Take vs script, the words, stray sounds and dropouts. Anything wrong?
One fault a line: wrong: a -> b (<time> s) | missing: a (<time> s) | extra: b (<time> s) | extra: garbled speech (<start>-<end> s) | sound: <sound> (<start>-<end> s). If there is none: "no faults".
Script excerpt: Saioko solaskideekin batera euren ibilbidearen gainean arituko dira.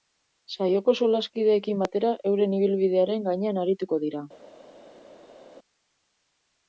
no faults